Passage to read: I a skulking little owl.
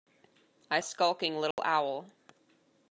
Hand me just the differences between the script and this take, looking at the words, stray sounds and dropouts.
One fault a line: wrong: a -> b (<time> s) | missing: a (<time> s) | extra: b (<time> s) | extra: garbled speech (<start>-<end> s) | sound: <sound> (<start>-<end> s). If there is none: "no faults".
sound: dropout (1.5-1.6 s)